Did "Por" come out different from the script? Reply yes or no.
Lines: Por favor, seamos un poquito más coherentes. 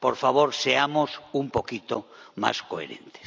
no